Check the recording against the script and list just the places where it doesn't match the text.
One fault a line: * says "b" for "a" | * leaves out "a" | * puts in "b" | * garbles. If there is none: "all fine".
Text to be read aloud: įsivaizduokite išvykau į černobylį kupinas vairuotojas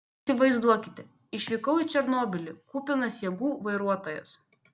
* puts in "jėgų"